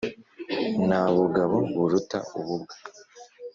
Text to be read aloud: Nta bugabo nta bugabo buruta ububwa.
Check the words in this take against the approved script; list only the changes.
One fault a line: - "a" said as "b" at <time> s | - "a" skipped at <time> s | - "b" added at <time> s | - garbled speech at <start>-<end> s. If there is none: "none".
- "nta bugabo" skipped at 1.6 s